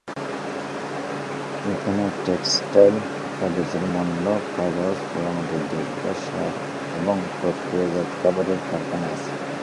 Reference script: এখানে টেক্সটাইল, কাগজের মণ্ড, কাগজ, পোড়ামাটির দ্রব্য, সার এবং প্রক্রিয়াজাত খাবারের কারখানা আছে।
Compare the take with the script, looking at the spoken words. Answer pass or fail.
pass